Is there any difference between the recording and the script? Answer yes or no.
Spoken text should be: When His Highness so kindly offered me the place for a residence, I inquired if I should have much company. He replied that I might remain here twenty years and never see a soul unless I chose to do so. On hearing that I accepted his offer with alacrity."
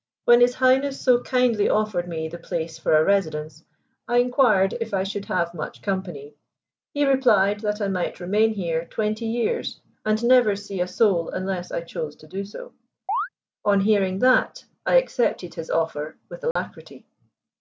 no